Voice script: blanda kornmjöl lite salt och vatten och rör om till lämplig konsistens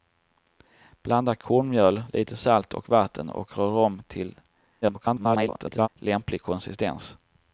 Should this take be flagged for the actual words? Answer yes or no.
yes